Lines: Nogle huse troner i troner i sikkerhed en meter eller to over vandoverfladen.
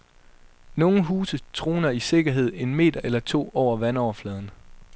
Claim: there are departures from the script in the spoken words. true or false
true